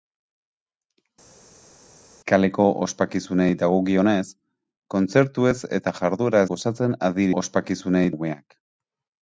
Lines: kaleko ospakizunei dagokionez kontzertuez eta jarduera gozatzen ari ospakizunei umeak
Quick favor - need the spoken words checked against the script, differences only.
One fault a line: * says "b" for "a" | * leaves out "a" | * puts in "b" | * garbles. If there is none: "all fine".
all fine